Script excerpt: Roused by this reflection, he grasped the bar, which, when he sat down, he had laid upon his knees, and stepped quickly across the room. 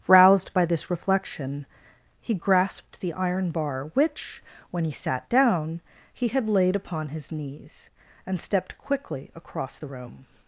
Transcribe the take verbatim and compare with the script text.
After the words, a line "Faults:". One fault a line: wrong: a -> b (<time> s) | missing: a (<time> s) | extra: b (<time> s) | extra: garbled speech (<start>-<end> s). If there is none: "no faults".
Roused by this reflection, he grasped the iron bar, which, when he sat down, he had laid upon his knees, and stepped quickly across the room.
Faults:
extra: iron (3.1 s)